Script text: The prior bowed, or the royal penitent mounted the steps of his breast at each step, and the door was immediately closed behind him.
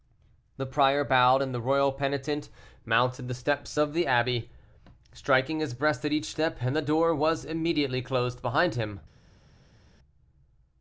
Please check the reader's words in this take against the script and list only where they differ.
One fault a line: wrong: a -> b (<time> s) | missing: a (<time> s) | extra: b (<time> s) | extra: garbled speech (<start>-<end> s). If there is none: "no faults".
wrong: or -> and (1.4 s)
extra: the abbey striking (3.9 s)